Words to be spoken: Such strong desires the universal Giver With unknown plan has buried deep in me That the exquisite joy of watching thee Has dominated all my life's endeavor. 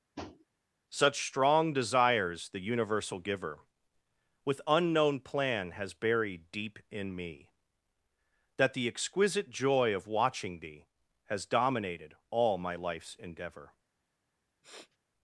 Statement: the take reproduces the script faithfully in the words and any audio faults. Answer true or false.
false